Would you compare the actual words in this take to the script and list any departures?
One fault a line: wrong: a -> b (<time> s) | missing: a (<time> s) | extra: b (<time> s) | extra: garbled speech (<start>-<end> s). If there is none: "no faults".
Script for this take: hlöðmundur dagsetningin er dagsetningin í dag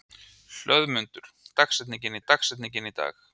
no faults